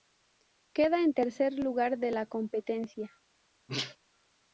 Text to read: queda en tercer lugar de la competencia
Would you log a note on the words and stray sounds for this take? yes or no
yes